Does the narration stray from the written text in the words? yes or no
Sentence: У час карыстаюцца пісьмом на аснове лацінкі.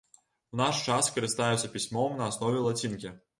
yes